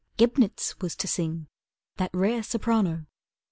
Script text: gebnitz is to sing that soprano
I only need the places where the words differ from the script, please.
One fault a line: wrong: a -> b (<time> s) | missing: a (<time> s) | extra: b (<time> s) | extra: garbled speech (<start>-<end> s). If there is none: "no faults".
wrong: is -> was (0.8 s)
extra: rare (2.1 s)